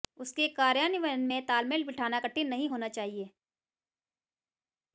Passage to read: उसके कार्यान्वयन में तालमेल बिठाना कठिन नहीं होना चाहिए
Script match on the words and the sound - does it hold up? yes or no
yes